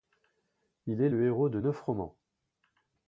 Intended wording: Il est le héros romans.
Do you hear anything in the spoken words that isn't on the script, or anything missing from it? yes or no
yes